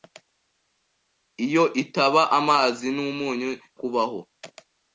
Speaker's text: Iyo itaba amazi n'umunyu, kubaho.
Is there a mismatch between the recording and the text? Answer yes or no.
no